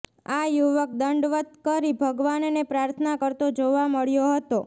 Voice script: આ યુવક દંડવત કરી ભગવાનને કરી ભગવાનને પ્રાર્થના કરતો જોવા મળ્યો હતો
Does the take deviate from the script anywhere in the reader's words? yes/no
yes